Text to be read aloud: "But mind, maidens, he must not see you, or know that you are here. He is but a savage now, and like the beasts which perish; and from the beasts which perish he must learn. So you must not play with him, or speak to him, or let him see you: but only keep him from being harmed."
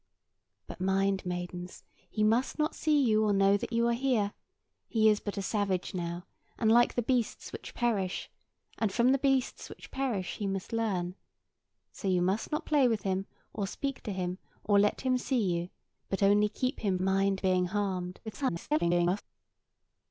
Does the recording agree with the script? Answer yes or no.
no